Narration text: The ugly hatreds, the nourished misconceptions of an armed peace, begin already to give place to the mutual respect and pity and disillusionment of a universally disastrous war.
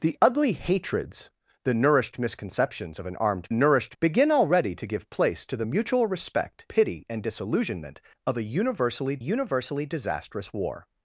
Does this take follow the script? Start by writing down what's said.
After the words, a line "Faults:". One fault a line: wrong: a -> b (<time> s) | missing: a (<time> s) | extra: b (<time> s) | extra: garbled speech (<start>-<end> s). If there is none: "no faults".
The ugly hatreds, the nourished misconceptions of an armed nourished, begin already to give place to the mutual respect pity and disillusionment of a universally universally disastrous war.
Faults:
wrong: peace -> nourished (3.5 s)
missing: and (6.7 s)
extra: universally (9.2 s)